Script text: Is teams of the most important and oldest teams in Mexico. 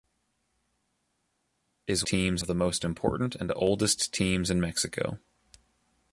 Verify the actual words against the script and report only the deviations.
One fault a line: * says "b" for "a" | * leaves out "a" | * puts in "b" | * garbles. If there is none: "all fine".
all fine